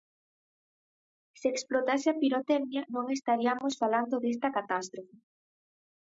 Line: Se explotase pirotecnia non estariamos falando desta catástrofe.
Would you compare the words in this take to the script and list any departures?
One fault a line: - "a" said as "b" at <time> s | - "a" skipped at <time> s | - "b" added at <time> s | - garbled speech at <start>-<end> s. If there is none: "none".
- "a" added at 2.1 s